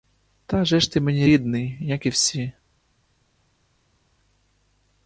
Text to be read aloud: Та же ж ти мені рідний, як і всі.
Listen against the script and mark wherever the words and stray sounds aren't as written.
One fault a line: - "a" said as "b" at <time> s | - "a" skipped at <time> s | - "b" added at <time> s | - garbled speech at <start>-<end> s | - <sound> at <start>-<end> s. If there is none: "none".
none